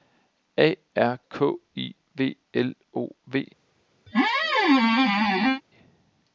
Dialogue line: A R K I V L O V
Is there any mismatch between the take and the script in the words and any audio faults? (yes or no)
yes